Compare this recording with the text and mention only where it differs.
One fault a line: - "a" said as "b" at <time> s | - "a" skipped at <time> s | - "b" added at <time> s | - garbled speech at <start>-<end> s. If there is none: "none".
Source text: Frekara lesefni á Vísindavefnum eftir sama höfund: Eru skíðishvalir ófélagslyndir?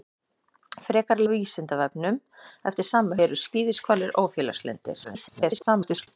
- "lesefni" skipped at 1.2 s
- "höfund" skipped at 3.2 s
- garbled speech at 5.0-6.1 s